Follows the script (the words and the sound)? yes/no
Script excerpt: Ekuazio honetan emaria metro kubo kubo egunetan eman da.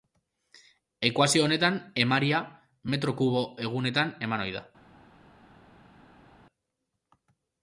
no